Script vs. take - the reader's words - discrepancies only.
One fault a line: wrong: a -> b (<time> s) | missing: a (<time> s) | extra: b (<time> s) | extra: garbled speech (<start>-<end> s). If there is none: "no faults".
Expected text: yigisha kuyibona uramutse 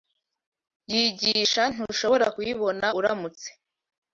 extra: ntushobora (1.7 s)